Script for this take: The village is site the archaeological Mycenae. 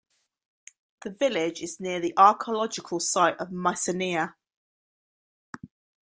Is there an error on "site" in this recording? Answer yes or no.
yes